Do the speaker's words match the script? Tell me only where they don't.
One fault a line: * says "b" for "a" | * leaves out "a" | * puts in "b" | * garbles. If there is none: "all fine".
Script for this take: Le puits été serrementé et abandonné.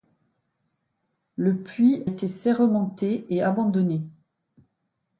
all fine